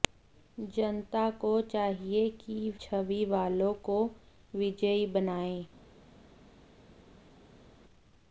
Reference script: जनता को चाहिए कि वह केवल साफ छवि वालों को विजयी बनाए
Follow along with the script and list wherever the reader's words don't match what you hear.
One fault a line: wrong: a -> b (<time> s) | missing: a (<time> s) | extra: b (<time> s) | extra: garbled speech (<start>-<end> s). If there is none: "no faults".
missing: वह केवल साफ (2.7 s)